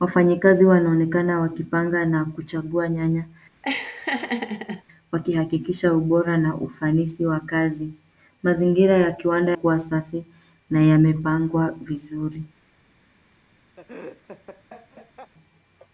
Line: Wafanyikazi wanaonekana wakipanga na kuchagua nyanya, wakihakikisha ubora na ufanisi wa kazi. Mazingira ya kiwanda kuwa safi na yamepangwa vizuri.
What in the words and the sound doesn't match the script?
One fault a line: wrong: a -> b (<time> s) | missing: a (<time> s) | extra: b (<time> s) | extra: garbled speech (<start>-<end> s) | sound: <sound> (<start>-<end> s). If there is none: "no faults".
sound: laugh (3.6-4.8 s)
sound: laugh (13.8-15.3 s)